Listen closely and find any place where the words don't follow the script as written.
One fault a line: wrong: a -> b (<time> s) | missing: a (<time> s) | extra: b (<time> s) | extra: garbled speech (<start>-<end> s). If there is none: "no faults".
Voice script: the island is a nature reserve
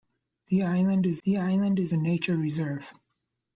extra: the island is (1.2 s)